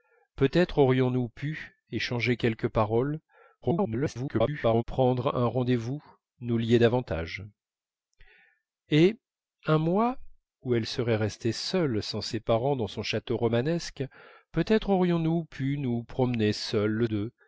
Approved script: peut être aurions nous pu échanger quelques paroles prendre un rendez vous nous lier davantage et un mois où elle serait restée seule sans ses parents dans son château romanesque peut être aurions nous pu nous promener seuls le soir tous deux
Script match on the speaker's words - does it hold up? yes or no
no